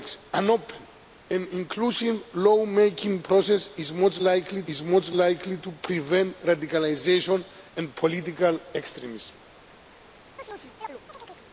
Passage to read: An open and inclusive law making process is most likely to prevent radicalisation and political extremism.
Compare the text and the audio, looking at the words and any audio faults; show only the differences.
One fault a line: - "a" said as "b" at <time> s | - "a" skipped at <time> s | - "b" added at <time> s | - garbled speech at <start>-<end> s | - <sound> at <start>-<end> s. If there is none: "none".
- "is most likely" added at 4.7 s
- chirp at 10.4-11.5 s